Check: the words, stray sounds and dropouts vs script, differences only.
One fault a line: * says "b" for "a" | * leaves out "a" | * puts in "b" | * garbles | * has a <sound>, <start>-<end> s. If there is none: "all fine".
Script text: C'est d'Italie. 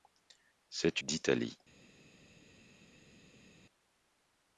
all fine